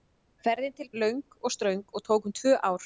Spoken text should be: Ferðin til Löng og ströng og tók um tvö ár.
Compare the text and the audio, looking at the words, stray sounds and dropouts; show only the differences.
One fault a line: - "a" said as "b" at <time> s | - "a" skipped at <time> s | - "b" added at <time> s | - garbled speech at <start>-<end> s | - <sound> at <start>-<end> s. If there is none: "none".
none